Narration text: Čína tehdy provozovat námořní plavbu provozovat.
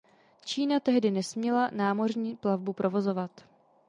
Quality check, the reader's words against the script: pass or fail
fail